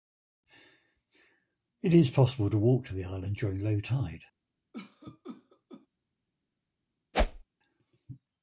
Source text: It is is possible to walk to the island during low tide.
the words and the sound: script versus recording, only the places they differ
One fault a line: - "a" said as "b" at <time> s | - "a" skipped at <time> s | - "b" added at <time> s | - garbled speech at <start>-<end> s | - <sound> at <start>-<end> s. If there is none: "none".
- "is" skipped at 2.1 s
- cough at 4.7-5.9 s
- whoosh at 7.1-7.4 s